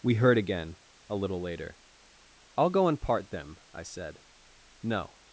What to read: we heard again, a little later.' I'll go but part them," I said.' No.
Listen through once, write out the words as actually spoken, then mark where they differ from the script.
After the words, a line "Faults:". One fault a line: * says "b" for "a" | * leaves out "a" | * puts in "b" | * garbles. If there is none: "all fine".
we heard again, a little later.' I'll go and part them," I said.' No.
Faults:
* says "and" for "but"